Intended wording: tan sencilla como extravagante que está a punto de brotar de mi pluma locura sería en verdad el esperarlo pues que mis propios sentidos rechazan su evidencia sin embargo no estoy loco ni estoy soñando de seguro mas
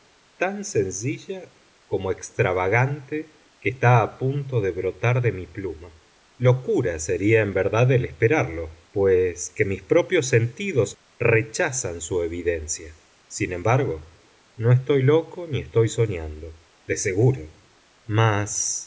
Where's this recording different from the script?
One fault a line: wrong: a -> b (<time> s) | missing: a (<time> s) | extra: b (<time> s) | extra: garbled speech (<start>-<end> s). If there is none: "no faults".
no faults